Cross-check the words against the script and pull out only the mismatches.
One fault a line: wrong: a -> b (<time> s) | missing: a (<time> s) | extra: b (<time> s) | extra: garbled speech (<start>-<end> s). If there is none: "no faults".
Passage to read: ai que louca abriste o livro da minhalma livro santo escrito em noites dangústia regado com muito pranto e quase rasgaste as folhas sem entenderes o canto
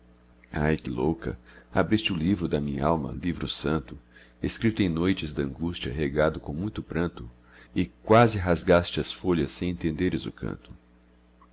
no faults